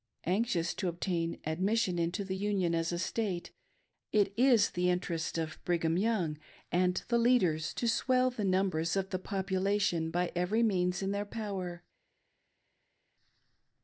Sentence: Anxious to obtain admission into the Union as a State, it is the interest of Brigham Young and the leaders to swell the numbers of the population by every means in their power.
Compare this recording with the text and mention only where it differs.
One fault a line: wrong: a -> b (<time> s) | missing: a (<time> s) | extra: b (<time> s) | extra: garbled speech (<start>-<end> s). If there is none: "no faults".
no faults